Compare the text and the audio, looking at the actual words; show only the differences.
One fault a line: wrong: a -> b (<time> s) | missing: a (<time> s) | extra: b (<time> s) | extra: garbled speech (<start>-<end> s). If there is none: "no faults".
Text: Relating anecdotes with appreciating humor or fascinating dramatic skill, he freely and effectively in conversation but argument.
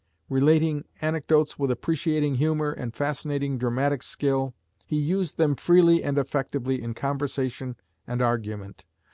wrong: or -> and (2.7 s)
extra: used them (5.0 s)
wrong: but -> and (8.1 s)